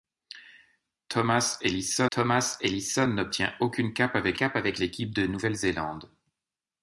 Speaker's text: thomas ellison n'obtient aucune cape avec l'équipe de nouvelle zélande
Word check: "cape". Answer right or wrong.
right